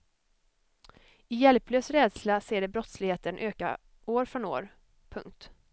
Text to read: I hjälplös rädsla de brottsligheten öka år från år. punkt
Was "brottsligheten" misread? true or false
false